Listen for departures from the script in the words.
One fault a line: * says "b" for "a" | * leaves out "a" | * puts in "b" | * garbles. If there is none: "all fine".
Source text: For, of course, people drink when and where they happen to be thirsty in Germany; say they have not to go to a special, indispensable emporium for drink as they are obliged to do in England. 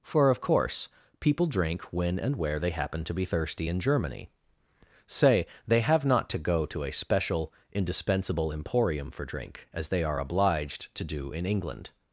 all fine